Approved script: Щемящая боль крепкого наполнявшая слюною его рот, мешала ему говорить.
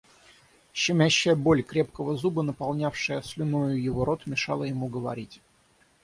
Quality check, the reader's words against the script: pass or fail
fail